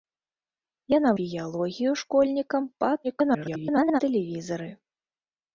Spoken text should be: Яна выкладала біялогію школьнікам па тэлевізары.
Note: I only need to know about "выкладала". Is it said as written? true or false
false